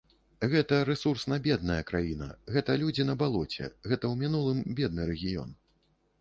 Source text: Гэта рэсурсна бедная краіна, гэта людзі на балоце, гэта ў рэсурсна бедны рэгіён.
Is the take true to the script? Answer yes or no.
no